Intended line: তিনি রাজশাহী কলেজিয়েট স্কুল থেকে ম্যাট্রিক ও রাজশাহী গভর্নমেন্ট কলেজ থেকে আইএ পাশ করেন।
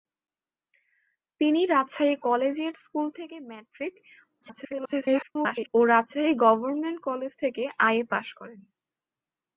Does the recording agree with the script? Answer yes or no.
no